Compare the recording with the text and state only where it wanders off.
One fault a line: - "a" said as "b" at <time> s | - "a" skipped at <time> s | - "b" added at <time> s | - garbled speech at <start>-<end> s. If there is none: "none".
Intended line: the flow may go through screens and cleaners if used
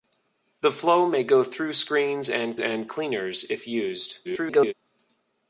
- "and" added at 2.6 s
- garbled speech at 4.2-4.7 s